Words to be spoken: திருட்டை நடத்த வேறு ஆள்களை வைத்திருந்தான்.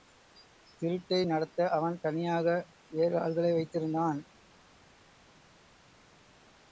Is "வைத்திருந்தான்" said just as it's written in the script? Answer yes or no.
yes